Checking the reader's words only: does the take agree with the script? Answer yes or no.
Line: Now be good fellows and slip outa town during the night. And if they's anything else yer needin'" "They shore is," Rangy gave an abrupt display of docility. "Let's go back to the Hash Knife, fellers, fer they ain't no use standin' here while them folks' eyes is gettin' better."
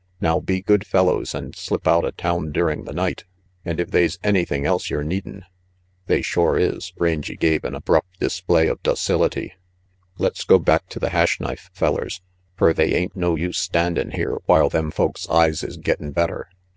yes